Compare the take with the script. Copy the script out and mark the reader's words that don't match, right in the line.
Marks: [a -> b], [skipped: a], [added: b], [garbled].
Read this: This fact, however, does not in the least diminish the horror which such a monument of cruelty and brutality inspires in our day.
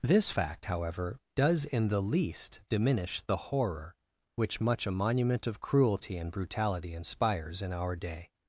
This fact, however, does [skipped: not] in the least diminish the horror which [such -> much] a monument of cruelty and brutality inspires in our day.